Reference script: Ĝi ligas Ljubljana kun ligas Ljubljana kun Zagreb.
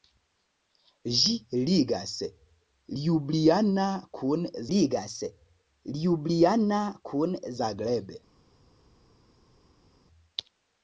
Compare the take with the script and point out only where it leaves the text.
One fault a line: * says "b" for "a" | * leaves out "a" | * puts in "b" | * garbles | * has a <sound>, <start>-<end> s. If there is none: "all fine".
all fine